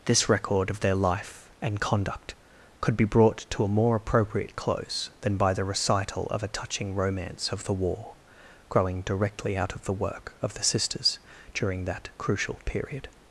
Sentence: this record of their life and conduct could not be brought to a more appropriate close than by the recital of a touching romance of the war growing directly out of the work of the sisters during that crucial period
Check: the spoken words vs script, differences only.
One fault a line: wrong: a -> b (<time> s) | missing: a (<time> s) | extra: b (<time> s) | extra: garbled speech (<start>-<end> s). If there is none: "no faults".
missing: not (3.0 s)